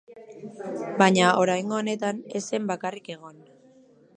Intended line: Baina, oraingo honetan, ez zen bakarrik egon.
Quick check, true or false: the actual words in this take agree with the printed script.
true